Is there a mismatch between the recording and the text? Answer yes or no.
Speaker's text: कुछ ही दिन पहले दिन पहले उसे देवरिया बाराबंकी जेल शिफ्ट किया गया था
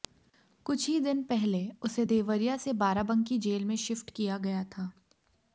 yes